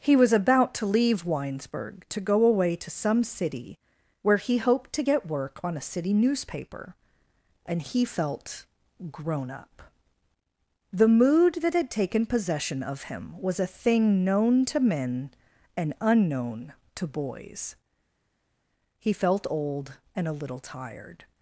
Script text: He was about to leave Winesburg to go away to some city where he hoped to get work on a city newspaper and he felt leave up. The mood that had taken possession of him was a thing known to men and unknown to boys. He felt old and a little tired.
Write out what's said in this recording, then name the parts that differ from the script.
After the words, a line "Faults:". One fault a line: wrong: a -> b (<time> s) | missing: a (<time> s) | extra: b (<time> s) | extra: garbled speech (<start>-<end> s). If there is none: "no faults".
He was about to leave Winesburg to go away to some city where he hoped to get work on a city newspaper and he felt grown up. The mood that had taken possession of him was a thing known to men and unknown to boys. He felt old and a little tired.
Faults:
wrong: leave -> grown (9.1 s)